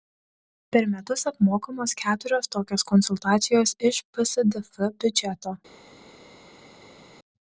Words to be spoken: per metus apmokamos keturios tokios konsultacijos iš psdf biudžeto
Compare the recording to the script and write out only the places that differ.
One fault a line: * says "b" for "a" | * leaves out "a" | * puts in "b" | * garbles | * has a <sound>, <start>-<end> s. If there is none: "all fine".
all fine